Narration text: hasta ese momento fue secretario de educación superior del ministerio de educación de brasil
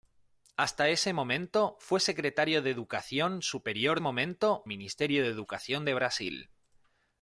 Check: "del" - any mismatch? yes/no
yes